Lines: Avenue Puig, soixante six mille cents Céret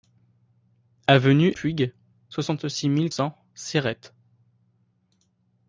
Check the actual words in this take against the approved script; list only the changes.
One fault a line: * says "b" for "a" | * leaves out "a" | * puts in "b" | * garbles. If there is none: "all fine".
all fine